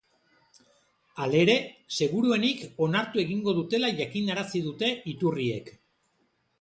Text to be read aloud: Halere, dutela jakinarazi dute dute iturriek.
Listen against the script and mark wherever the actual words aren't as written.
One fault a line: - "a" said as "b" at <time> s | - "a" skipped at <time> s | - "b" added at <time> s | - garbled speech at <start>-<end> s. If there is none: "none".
- "seguruenik onartu egingo" added at 2.0 s
- "dute" skipped at 4.9 s